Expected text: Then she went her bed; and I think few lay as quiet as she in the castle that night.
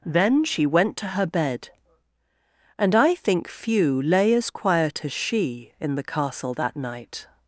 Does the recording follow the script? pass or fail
fail